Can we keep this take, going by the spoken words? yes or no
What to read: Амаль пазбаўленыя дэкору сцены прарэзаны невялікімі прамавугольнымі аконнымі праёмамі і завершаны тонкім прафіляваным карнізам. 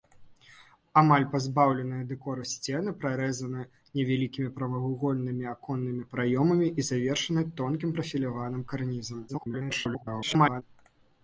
no